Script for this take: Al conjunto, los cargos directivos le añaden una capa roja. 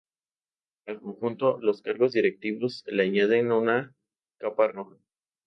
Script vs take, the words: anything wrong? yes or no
no